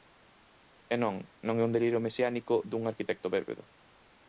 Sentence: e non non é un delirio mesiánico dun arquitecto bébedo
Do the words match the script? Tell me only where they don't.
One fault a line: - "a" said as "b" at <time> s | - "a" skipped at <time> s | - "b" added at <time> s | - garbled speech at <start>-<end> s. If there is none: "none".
none